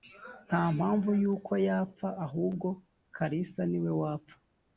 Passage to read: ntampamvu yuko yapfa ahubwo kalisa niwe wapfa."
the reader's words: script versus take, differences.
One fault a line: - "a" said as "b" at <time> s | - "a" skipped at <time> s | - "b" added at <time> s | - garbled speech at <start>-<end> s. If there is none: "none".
none